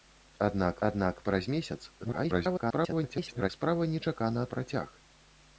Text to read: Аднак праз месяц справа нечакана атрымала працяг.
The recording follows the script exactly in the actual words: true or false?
false